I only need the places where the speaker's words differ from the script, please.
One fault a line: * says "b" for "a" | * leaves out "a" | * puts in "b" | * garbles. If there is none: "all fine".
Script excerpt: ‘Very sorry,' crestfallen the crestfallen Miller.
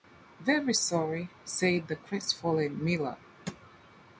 * says "said" for "crestfallen"